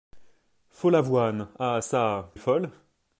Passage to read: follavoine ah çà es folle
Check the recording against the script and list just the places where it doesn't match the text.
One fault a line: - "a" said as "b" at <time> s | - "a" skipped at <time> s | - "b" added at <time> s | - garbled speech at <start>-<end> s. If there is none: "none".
none